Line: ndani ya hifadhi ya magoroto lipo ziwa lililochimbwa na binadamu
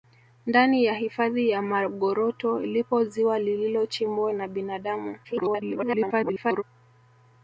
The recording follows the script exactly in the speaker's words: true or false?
false